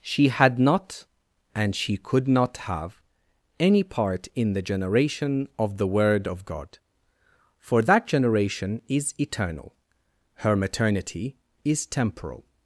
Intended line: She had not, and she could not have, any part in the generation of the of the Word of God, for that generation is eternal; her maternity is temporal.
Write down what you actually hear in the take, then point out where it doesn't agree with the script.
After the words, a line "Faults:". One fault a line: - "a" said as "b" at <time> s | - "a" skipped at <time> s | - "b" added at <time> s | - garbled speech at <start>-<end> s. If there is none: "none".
She had not, and she could not have, any part in the generation of the Word of God, for that generation is eternal; her maternity is temporal.
Faults:
- "of the" skipped at 5.9 s